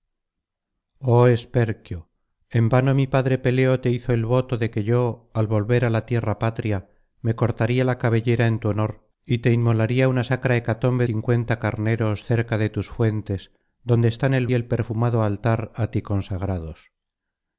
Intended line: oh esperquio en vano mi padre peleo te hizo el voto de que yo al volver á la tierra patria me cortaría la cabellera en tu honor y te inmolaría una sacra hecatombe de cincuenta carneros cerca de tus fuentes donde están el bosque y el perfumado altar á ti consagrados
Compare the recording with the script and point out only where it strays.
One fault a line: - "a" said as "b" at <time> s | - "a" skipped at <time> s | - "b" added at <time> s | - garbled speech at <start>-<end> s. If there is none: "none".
- "de" skipped at 11.1 s
- "bosque" skipped at 14.5 s